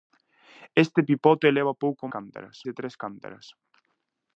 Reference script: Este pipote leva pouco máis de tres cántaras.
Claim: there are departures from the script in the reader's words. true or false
true